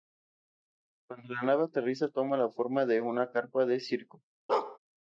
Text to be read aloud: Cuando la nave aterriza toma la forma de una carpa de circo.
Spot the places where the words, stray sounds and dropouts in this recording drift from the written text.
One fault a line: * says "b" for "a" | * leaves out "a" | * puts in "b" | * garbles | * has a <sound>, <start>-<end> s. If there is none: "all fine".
* has a bark, 4.5-4.8 s